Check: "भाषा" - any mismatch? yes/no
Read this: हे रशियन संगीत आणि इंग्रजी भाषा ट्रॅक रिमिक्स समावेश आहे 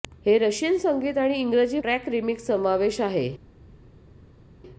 yes